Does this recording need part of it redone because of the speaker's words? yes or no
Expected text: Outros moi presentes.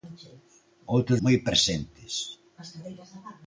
no